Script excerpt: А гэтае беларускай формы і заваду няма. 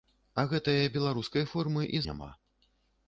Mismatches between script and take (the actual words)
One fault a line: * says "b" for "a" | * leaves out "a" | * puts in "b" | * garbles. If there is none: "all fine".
* leaves out "заваду"